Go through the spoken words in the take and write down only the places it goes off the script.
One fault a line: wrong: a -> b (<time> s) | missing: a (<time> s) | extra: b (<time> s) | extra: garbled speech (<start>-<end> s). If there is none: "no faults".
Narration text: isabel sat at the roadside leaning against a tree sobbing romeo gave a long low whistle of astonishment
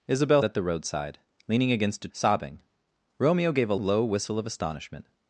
missing: sat (0.4 s)
missing: tree (2.1 s)
missing: long (3.7 s)